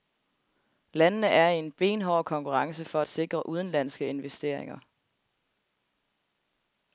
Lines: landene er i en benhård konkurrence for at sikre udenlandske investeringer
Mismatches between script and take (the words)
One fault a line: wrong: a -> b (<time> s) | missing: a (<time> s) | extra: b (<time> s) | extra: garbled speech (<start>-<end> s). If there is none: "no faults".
no faults